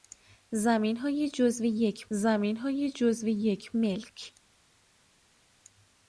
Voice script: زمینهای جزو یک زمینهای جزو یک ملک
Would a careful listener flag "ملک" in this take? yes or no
no